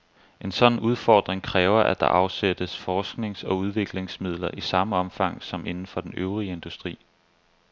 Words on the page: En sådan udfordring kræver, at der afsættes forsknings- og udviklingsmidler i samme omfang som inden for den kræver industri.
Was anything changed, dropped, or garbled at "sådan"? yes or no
no